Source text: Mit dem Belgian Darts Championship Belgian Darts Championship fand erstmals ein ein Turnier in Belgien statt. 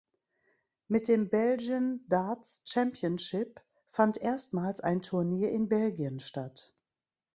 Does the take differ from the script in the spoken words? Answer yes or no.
yes